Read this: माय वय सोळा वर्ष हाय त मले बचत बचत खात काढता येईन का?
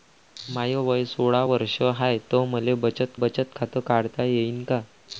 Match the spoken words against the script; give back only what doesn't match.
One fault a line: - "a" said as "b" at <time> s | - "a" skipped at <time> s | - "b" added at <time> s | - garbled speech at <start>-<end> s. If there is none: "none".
none